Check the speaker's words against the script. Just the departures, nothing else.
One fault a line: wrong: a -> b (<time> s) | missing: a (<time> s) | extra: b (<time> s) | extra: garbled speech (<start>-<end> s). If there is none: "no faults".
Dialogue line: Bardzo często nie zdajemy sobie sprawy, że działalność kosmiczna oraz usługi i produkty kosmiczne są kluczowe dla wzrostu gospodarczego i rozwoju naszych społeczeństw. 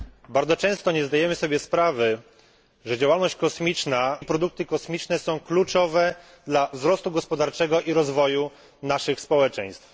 missing: oraz usługi (4.2 s)